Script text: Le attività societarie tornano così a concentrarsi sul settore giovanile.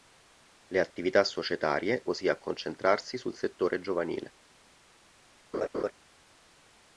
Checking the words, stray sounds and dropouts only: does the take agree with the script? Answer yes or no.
no